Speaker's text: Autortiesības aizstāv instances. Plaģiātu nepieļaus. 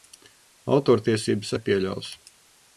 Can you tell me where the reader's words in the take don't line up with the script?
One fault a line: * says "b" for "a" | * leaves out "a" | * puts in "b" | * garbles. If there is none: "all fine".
* leaves out "aizstāv instances Plaģiātu"